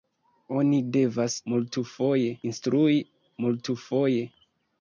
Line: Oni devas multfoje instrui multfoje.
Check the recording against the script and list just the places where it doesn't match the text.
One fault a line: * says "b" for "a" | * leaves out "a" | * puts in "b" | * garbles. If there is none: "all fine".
all fine